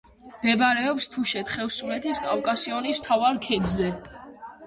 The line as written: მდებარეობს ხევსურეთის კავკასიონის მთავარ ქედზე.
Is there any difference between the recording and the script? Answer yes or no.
yes